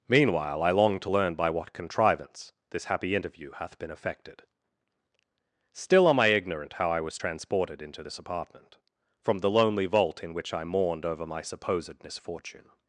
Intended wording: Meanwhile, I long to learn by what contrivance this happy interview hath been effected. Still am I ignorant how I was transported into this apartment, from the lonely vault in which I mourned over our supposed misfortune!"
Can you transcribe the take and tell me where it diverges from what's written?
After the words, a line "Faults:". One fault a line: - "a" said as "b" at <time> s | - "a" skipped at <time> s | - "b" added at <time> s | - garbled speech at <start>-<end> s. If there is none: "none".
Meanwhile, I long to learn by what contrivance this happy interview hath been effected. Still am I ignorant how I was transported into this apartment, from the lonely vault in which I mourned over my supposed misfortune!"
Faults:
- "our" said as "my" at 11.3 s